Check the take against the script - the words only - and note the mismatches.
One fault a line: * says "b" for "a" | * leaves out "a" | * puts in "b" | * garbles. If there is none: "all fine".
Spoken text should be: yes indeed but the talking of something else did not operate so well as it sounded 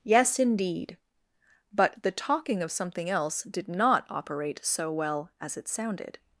all fine